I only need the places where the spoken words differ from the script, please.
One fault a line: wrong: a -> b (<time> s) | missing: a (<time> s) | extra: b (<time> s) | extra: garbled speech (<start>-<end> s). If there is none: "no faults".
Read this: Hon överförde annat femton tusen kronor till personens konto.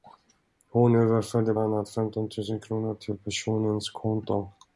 no faults